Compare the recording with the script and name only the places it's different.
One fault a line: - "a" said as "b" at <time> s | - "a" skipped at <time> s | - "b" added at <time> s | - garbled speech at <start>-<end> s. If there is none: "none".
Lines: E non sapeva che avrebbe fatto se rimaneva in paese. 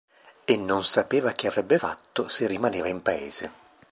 none